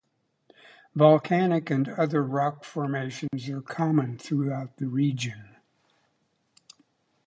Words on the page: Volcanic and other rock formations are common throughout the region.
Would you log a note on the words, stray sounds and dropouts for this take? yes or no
yes